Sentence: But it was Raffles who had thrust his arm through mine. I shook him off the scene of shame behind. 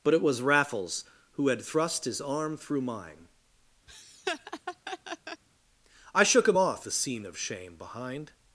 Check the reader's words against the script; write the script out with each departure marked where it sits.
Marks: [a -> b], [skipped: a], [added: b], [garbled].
But it was Raffles who had thrust his arm through mine. I shook him off the scene of shame behind.